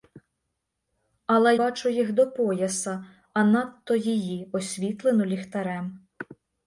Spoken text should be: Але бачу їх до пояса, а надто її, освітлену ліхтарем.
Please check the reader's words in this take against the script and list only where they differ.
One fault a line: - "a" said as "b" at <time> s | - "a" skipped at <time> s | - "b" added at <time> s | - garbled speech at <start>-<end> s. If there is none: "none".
none